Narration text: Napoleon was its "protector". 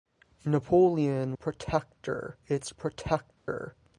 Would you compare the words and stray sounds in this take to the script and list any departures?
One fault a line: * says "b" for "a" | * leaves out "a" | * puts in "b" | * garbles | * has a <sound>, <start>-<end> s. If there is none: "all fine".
* says "protector" for "was"
* has a dropout, 3.4-3.5 s